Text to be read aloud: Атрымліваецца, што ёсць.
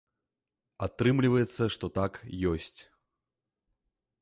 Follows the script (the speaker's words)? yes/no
no